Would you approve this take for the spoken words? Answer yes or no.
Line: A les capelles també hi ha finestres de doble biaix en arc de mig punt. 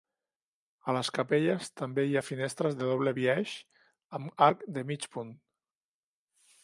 no